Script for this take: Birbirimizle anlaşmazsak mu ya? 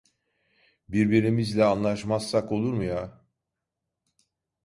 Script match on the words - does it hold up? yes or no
no